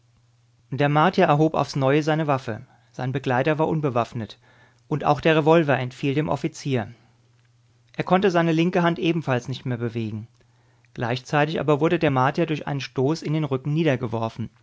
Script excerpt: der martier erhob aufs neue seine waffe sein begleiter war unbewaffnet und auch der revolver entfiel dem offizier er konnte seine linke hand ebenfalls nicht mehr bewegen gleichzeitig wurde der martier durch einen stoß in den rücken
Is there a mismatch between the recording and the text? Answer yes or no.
yes